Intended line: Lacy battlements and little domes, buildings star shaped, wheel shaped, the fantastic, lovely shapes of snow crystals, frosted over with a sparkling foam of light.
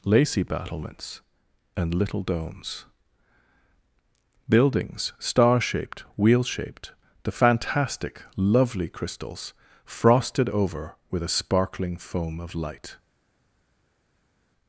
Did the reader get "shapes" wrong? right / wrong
wrong